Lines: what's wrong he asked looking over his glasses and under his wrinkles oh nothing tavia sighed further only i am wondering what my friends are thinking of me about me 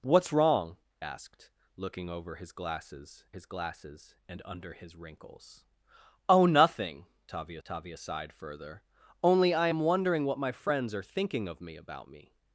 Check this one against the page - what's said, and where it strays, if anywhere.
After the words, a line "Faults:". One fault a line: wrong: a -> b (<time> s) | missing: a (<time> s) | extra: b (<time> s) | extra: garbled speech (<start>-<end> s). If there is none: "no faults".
what's wrong asked looking over his glasses his glasses and under his wrinkles oh nothing tavia tavia sighed further only i am wondering what my friends are thinking of me about me
Faults:
missing: he (0.8 s)
extra: his glasses (3.3 s)
extra: tavia (7.6 s)